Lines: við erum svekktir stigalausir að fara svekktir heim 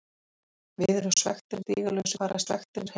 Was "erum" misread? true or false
false